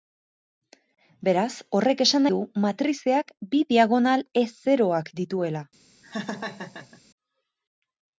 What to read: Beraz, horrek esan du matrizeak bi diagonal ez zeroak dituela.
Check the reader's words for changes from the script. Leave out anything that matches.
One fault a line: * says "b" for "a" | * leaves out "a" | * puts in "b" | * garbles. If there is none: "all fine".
all fine